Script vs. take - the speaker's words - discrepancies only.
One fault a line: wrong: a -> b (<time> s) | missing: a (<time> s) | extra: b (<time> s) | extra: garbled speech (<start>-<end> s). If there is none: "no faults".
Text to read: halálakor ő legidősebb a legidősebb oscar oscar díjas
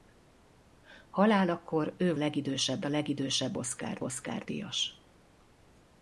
no faults